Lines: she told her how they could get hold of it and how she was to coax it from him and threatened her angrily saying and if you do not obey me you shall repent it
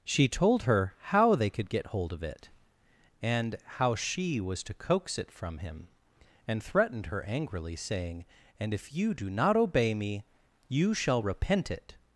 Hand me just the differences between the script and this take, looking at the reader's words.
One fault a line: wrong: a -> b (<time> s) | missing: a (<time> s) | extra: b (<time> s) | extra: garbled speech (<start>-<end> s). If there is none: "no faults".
no faults